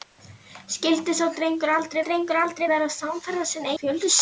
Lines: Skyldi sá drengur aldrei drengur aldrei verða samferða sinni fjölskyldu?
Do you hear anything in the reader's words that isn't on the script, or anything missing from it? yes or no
no